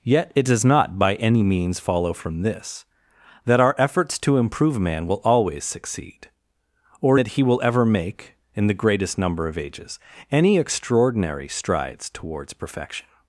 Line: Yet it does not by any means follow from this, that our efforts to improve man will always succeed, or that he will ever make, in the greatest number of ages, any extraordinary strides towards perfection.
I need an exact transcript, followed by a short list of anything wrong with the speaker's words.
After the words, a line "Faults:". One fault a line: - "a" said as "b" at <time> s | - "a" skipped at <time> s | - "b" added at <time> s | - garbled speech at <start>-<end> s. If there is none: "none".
Yet it does not by any means follow from this, that our efforts to improve man will always succeed, or that he will ever make, in the greatest number of ages, any extraordinary strides towards perfection.
Faults:
none